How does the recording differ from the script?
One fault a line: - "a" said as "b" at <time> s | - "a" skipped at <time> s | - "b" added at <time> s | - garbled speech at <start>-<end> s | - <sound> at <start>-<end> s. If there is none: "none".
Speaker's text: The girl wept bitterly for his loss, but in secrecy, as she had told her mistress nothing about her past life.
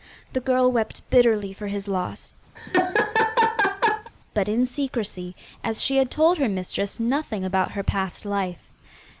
- laugh at 2.6-4.1 s